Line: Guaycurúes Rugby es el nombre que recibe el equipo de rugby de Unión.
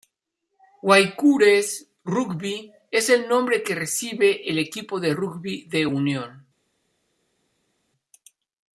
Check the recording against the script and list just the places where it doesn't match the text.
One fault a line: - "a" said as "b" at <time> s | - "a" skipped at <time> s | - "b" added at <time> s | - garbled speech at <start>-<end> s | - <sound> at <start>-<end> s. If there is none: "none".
none